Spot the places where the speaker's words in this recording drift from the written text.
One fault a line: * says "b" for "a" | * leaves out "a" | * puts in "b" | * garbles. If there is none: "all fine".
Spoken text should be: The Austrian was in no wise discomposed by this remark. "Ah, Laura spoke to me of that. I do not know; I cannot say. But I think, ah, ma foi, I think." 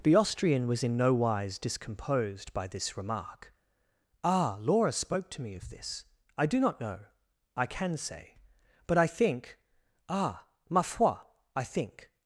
* says "this" for "that"
* says "can" for "cannot"